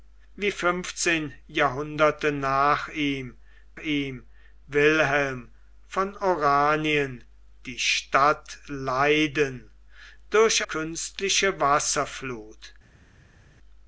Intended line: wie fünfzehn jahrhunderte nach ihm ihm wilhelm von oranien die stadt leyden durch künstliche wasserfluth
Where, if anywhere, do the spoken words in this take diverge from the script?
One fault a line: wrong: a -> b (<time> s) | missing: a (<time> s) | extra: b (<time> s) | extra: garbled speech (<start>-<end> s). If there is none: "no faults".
no faults